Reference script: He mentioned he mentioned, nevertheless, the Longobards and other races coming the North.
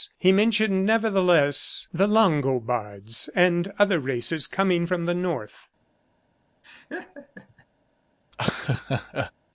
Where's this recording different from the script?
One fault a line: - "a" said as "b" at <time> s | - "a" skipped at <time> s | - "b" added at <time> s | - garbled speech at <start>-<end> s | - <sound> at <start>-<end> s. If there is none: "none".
- "he mentioned" skipped at 0.8 s
- "from" added at 4.8 s
- laugh at 6.6-7.7 s
- laugh at 8.3-9.3 s